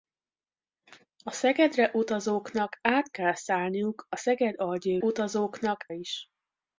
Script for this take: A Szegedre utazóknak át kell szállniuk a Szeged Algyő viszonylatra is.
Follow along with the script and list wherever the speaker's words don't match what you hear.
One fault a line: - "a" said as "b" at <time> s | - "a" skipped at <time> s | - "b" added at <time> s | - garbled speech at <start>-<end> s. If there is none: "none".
- "viszonylatra" said as "utazóknak" at 5.0 s